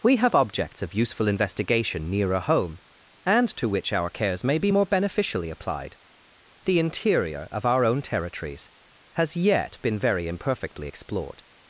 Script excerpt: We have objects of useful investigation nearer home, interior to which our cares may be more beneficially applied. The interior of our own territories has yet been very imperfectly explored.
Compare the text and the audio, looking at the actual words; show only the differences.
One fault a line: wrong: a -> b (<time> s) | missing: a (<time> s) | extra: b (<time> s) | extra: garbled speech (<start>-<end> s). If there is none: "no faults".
wrong: interior -> and (3.3 s)